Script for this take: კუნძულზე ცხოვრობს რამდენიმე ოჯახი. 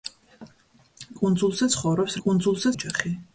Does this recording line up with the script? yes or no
no